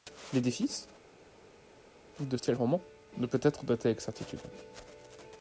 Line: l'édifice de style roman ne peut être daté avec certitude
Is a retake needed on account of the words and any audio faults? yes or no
no